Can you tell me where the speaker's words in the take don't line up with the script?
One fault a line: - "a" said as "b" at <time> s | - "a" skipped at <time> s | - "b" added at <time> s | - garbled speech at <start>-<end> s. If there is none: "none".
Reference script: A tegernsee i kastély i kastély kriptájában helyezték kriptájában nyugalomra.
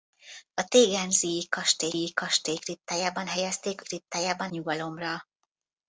none